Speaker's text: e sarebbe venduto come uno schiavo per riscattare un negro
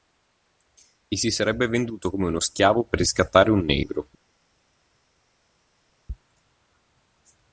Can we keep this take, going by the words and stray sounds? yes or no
no